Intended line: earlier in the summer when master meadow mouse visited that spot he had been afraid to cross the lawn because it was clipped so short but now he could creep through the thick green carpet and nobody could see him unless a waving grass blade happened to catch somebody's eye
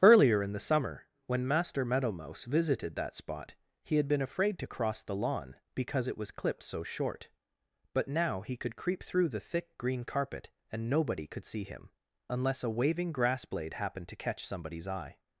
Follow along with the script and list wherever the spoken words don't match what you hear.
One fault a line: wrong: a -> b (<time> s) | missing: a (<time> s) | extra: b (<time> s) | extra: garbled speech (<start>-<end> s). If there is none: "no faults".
no faults